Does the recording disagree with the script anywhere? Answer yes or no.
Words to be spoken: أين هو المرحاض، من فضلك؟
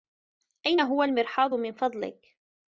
no